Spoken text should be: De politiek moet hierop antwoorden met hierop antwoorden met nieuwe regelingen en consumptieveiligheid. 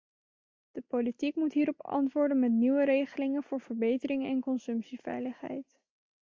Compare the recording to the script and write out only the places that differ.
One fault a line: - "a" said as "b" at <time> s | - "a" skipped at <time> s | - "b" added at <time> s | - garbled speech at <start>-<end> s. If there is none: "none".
- "hierop antwoorden met nieuwe regelingen" said as "nieuwe regelingen voor verbetering" at 2.5 s